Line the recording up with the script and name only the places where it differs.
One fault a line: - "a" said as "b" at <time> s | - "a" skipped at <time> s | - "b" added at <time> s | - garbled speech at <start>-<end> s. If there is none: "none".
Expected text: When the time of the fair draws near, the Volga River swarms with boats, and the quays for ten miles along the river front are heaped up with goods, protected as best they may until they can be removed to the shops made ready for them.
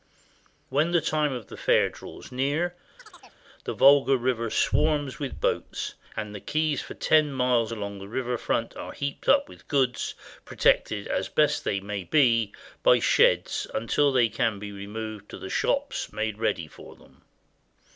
- "be by sheds" added at 12.0 s